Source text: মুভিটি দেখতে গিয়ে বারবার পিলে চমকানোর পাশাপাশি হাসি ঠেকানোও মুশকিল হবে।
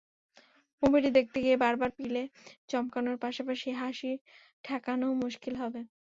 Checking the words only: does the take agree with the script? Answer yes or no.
yes